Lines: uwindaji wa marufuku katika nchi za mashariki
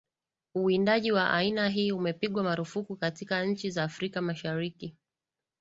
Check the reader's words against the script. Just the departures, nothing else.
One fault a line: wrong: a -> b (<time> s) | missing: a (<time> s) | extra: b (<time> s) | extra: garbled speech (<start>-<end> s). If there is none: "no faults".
extra: aina hii umepigwa (1.3 s)
extra: afrika (3.8 s)